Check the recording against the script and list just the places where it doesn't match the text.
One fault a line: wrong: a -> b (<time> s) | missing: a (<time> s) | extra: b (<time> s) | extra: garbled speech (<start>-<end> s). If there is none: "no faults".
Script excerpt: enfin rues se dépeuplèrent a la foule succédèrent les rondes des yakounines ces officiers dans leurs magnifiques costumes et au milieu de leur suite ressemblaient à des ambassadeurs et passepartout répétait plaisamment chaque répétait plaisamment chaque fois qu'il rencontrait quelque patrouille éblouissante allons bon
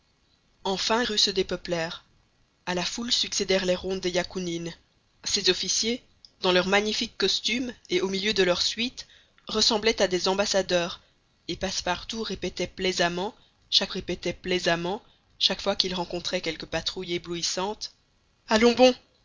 no faults